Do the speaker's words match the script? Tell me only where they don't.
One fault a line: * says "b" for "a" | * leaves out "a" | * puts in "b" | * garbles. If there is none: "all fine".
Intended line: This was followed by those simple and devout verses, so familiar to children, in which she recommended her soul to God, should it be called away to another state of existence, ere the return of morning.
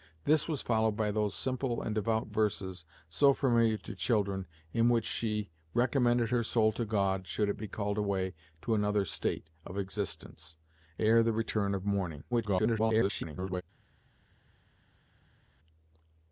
* garbles